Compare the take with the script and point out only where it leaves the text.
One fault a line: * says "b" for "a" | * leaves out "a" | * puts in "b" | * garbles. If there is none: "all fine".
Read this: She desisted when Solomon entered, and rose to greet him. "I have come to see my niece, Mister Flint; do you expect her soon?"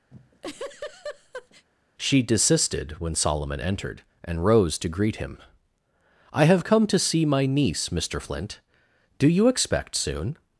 * leaves out "her"